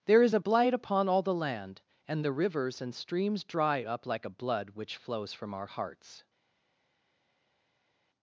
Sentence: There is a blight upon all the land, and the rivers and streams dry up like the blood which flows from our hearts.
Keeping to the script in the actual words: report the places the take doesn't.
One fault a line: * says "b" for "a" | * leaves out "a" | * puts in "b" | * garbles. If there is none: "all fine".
* says "a" for "the"